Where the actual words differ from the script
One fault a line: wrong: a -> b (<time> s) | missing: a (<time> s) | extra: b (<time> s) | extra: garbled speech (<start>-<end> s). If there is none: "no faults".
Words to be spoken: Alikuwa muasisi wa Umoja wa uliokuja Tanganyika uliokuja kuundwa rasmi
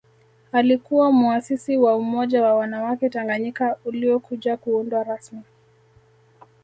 wrong: uliokuja -> wanawake (2.5 s)